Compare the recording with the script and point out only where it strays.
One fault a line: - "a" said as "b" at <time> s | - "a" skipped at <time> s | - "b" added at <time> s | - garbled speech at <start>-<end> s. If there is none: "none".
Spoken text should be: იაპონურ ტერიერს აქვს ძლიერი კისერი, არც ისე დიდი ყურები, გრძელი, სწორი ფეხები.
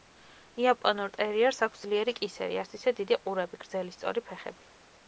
none